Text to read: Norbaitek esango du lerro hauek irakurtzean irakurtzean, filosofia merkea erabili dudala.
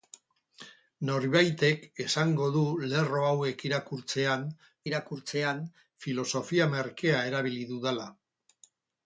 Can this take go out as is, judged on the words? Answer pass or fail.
pass